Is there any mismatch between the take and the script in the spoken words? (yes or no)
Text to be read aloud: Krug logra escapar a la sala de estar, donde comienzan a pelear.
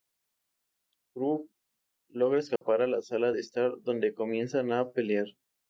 no